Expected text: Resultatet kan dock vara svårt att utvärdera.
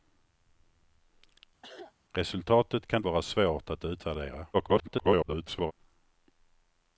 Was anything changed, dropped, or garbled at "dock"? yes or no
yes